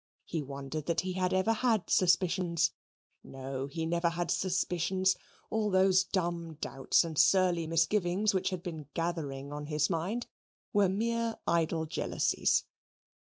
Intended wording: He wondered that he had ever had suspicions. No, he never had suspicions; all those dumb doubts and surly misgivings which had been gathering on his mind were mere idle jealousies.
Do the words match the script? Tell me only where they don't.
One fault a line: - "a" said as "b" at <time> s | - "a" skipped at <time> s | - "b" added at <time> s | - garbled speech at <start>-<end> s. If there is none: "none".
none